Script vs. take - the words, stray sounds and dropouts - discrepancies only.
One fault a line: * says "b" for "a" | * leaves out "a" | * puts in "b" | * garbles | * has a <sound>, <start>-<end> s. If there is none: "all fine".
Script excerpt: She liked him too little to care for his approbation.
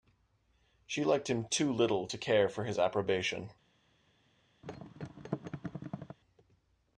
* has a thud, 4.6-6.2 s